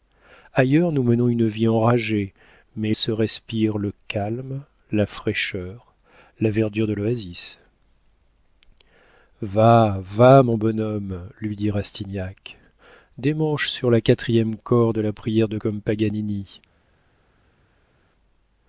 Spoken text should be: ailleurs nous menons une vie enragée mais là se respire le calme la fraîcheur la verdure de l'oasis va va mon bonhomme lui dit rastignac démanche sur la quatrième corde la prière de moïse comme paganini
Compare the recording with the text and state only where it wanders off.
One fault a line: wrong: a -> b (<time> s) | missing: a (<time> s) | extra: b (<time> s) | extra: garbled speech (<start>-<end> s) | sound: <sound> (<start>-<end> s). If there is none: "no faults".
missing: là (3.0 s)
missing: moïse (15.6 s)